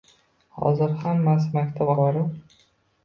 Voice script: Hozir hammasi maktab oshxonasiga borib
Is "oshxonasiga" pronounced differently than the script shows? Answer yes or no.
yes